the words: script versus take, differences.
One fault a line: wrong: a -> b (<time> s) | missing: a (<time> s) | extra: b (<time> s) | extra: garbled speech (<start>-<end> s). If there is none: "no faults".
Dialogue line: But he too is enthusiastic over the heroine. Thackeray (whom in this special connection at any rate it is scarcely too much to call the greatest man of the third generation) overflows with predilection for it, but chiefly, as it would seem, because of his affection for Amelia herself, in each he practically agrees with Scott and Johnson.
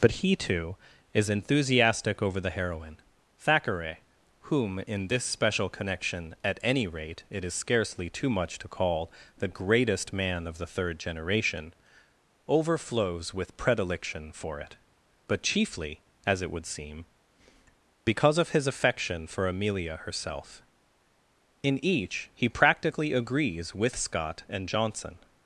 no faults